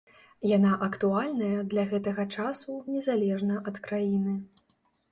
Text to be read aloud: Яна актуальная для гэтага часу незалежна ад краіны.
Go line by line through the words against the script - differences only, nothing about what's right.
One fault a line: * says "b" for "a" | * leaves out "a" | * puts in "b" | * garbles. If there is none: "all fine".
all fine